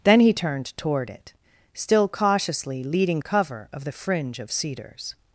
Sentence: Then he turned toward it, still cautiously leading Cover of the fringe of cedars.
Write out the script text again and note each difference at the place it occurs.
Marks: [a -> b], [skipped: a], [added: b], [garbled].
Then he turned toward it, still cautiously leading Cover of the fringe of cedars.